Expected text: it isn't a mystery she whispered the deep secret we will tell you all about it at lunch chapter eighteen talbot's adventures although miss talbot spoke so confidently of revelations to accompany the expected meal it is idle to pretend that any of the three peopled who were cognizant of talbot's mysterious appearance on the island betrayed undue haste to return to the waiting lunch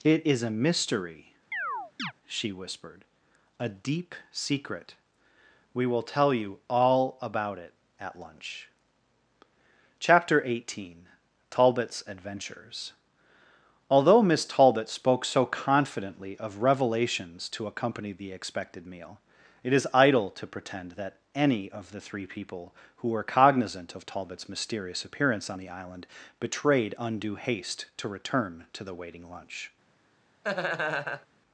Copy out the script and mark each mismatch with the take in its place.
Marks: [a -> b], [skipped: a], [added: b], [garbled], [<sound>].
it [isn't -> is] a mystery [chirp] she whispered [the -> a] deep secret we will tell you all about it at lunch chapter eighteen talbot's adventures although miss talbot spoke so confidently of revelations to accompany the expected meal it is idle to pretend that any of the three [peopled -> people] who were cognizant of talbot's mysterious appearance on the island betrayed undue haste to return to the waiting lunch [laugh]